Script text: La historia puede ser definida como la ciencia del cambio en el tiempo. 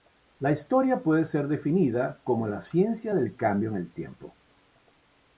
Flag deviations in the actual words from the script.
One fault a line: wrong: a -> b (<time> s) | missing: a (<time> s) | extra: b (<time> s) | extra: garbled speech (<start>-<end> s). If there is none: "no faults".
no faults